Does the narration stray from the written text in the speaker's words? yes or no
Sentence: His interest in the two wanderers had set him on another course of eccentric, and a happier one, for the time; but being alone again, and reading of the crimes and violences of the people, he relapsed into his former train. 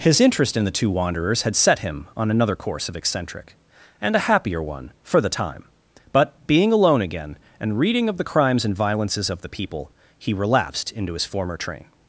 no